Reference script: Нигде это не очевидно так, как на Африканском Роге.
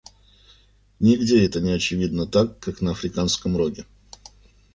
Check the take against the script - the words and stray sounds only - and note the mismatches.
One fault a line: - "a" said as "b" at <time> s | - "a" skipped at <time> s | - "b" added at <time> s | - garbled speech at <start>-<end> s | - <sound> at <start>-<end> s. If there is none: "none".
none